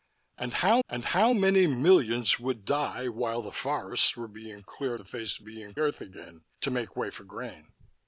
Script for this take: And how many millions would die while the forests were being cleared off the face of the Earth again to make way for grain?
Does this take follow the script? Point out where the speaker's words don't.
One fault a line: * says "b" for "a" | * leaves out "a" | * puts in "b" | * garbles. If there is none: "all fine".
* puts in "and how"
* leaves out "off"
* says "being" for "the"